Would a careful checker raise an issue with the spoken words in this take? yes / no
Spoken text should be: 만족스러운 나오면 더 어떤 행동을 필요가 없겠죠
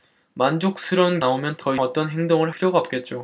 no